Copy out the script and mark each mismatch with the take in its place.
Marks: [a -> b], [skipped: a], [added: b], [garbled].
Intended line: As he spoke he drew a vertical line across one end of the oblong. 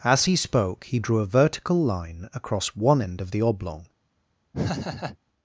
As he spoke he drew a vertical line across one end of the oblong.